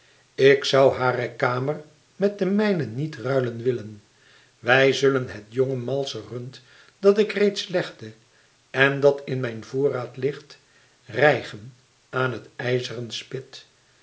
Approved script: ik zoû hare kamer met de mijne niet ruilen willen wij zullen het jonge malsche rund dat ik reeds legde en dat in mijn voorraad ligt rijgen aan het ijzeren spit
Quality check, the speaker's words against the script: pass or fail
pass